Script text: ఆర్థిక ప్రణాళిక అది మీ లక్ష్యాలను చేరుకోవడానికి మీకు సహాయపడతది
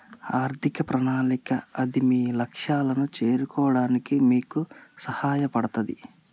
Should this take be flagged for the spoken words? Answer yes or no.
no